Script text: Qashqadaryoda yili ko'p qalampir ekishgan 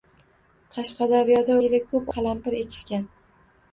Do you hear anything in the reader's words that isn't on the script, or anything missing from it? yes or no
no